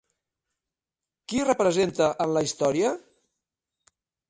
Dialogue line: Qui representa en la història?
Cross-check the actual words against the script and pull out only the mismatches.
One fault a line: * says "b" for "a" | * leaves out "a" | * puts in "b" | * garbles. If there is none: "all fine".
all fine